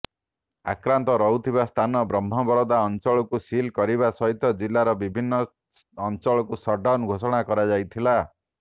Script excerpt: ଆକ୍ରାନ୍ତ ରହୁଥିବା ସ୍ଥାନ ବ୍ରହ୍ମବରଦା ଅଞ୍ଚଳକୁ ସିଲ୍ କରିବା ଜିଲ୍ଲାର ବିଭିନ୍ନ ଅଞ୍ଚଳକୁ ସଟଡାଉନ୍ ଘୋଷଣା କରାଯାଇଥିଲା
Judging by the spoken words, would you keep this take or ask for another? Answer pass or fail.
fail